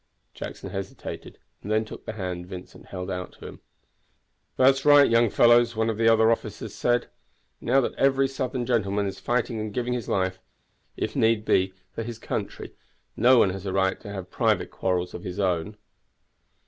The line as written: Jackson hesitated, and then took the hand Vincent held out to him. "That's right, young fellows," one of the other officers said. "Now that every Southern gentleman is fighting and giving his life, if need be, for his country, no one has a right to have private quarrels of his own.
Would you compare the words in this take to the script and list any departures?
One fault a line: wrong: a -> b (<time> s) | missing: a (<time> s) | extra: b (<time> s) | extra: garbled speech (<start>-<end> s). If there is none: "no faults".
no faults